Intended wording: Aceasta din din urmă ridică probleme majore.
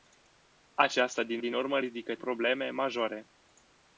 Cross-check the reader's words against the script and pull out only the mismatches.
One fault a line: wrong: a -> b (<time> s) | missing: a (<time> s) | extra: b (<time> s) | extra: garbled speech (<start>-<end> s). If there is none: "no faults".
no faults